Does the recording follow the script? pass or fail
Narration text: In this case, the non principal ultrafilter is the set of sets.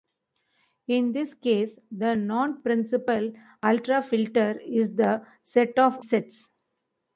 pass